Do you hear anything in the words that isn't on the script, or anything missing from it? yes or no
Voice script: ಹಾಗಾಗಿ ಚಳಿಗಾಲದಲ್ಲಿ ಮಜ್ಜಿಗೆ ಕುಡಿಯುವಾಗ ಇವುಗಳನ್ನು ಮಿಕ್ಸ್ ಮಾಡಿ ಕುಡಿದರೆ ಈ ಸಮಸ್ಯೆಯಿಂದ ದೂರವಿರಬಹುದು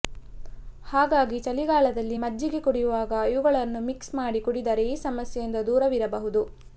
no